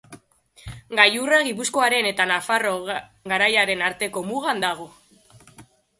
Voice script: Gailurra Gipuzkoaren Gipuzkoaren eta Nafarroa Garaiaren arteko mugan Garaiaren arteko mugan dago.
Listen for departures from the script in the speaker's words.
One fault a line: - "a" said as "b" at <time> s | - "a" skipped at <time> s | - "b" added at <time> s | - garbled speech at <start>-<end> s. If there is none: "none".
- "Gipuzkoaren" skipped at 2.1 s
- "Garaiaren arteko mugan" skipped at 4.6 s